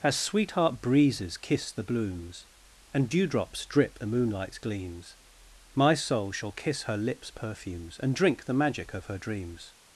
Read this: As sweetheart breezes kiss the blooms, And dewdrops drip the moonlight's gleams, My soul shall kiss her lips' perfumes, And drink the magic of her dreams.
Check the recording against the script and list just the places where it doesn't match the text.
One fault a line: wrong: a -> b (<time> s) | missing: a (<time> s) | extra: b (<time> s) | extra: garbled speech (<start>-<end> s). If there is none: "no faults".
no faults